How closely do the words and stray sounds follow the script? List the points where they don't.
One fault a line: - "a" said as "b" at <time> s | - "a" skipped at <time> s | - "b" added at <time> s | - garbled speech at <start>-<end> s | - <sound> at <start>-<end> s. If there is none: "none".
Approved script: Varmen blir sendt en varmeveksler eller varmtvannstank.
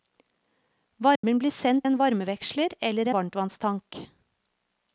- dropout at 1.2-1.2 s